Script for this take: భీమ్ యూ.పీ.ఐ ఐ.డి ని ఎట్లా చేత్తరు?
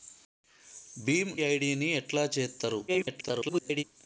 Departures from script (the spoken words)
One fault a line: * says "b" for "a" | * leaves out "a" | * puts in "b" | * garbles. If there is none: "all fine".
* leaves out "యూ.పీ.ఐ"
* garbles